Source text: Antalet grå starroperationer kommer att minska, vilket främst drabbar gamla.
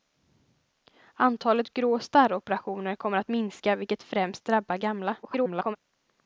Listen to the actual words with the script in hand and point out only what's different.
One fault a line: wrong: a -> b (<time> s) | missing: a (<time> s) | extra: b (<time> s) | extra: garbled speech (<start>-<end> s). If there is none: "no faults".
extra: garbled speech (5.2-5.8 s)